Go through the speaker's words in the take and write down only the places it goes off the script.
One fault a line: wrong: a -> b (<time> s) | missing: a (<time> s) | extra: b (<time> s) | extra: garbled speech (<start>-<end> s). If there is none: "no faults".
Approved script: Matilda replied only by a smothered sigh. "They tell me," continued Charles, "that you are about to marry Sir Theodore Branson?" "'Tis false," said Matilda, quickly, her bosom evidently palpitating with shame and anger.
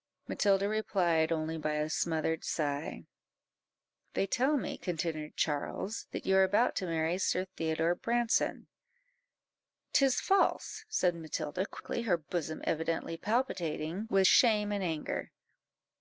no faults